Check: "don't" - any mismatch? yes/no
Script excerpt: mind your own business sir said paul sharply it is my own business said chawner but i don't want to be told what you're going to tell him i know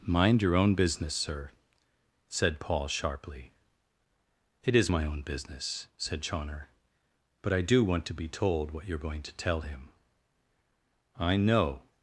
yes